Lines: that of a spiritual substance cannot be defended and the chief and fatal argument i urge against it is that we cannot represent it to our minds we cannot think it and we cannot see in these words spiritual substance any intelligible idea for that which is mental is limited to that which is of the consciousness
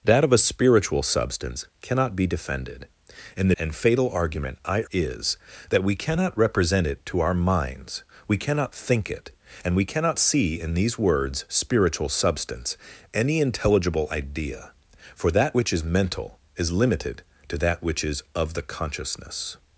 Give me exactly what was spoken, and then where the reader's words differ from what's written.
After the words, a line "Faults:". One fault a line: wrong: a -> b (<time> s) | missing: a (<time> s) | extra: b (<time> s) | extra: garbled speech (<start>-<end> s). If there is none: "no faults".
that of a spiritual substance cannot be defended and and fatal argument i is that we cannot represent it to our minds we cannot think it and we cannot see in these words spiritual substance any intelligible idea for that which is mental is limited to that which is of the consciousness
Faults:
missing: the chief (3.5 s)
missing: urge against it (4.8 s)